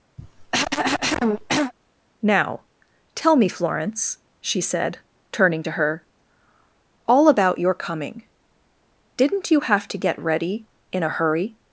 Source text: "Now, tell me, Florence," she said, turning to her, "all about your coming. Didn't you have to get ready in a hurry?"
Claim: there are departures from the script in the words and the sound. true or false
true